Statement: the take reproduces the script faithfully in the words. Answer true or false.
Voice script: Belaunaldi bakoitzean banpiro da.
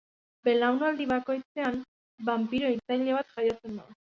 false